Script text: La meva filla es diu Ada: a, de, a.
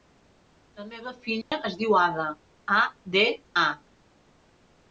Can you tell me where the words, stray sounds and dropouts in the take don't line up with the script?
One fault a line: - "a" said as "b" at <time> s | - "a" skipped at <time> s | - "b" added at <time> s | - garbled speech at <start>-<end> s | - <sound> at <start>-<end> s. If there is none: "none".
- dropout at 1.4-1.5 s